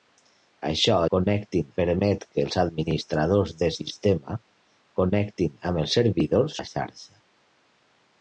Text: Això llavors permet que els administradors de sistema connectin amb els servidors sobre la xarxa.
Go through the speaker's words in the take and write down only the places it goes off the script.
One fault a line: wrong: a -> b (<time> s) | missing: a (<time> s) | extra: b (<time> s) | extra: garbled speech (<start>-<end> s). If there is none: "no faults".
wrong: llavors -> connectin (1.1 s)
missing: sobre (6.6 s)